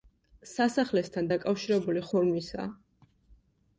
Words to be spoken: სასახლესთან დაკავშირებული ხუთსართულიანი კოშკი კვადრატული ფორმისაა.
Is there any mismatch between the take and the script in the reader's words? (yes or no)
yes